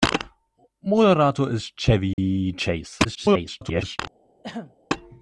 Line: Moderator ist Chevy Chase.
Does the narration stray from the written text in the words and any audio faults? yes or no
yes